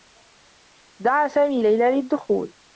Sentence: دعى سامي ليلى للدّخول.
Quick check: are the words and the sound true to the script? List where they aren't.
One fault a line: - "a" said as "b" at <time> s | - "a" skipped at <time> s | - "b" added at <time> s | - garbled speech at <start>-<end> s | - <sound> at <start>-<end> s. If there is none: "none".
none